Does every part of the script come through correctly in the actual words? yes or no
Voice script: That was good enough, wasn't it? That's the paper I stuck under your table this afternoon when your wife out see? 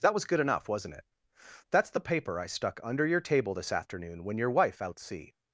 yes